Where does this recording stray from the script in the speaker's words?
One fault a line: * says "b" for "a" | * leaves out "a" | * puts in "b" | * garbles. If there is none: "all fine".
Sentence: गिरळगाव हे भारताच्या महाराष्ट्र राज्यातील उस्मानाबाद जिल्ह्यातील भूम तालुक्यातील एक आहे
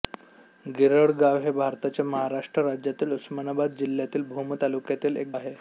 all fine